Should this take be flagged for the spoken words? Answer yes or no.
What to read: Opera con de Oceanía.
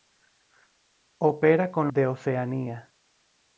no